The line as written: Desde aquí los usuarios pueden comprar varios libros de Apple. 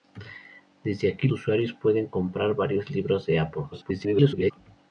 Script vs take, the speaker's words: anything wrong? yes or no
yes